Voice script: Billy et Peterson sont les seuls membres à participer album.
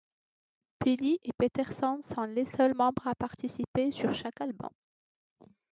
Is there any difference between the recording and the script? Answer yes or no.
yes